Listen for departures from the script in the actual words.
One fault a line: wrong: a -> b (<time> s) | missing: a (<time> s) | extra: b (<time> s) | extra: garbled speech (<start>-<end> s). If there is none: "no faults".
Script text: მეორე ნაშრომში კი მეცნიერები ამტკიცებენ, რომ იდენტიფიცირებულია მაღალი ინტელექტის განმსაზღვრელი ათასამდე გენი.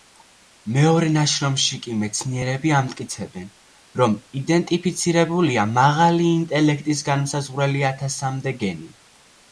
no faults